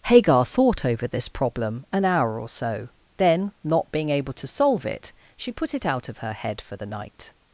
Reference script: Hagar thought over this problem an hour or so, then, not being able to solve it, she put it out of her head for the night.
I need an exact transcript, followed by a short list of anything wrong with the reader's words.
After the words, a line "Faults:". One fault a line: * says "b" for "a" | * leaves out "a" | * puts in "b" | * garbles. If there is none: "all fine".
Hagar thought over this problem an hour or so, then, not being able to solve it, she put it out of her head for the night.
Faults:
all fine